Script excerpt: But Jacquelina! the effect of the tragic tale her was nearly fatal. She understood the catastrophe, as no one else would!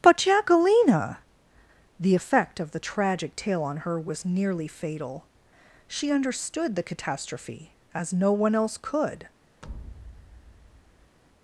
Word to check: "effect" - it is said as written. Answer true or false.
true